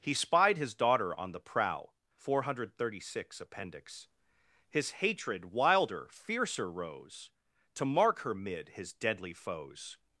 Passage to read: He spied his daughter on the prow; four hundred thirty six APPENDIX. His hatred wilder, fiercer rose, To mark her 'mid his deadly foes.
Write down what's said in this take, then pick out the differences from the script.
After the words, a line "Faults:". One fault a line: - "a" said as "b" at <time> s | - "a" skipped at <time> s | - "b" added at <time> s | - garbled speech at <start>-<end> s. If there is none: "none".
He spied his daughter on the prow; four hundred thirty six APPENDIX. His hatred wilder, fiercer rose, To mark her 'mid his deadly foes.
Faults:
none